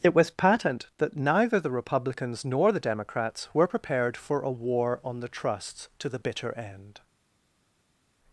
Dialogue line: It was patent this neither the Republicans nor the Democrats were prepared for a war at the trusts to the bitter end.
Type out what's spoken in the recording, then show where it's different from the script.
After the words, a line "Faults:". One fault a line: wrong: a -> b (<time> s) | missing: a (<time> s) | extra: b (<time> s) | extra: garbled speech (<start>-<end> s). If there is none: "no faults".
It was patent that neither the Republicans nor the Democrats were prepared for a war on the trusts to the bitter end.
Faults:
wrong: this -> that (1.0 s)
wrong: at -> on (5.0 s)